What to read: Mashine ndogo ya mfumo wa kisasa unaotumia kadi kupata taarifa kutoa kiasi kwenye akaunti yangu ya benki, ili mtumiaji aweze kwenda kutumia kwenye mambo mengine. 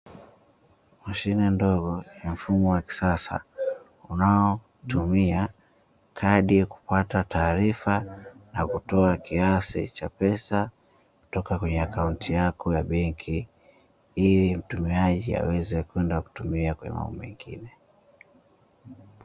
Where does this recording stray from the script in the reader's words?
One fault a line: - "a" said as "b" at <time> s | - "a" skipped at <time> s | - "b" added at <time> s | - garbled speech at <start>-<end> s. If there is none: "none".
- "na" added at 8.5 s
- "cha pesa kutoka" added at 9.9 s
- "yangu" said as "yako" at 12.3 s